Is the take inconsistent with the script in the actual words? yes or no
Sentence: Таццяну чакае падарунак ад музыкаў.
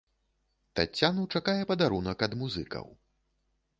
no